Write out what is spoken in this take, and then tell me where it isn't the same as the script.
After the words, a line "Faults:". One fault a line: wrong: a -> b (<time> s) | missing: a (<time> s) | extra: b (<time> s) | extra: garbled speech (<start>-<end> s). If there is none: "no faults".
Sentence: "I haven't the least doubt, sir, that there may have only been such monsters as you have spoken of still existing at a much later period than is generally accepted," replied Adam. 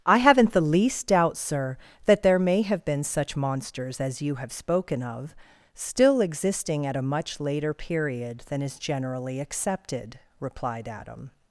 "I haven't the least doubt, sir, that there may have been such monsters as you have spoken of still existing at a much later period than is generally accepted," replied Adam.
Faults:
missing: only (2.8 s)